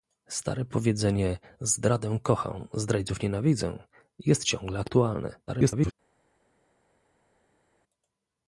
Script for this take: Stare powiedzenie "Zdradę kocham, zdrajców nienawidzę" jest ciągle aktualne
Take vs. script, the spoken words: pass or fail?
fail